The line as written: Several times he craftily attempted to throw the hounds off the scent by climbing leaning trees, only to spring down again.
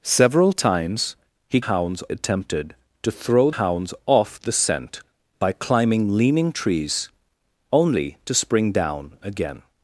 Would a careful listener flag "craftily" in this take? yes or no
yes